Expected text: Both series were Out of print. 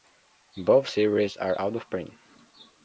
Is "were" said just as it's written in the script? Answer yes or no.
no